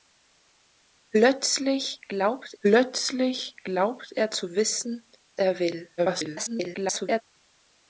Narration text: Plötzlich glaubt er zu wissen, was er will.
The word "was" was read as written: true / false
false